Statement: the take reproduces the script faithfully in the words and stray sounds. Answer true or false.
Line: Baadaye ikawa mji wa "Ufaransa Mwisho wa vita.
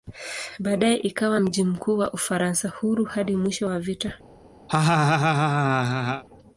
false